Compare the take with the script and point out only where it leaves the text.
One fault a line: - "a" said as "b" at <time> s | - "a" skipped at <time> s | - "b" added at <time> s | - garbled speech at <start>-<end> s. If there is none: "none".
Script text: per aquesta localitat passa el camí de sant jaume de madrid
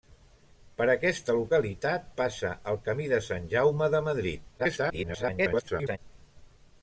- garbled speech at 4.6-6.0 s